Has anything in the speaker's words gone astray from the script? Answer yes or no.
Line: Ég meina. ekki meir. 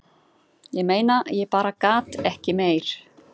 yes